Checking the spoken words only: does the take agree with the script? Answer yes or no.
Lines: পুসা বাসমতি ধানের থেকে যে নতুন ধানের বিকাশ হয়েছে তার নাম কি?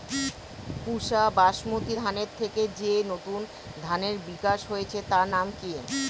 yes